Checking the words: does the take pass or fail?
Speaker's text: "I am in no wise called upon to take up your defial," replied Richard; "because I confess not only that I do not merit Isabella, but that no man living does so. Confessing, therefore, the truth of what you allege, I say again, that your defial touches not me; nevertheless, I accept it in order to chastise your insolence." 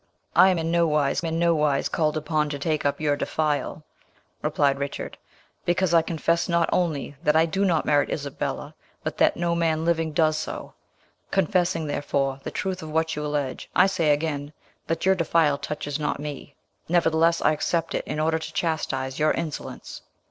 fail